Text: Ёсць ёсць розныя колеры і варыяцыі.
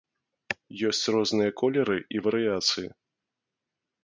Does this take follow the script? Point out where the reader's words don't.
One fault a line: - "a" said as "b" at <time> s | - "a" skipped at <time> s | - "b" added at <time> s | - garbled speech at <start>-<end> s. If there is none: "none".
- "ёсць" skipped at 1.0 s